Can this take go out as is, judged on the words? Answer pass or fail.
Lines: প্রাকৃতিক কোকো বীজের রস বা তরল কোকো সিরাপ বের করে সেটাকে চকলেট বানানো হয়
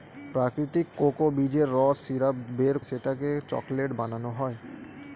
fail